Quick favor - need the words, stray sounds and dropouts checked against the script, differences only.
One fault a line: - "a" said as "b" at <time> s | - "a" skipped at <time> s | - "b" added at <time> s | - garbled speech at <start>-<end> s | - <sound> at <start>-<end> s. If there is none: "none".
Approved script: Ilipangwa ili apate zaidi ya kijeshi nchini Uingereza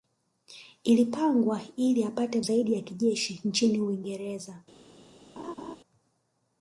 - laugh at 5.4-5.8 s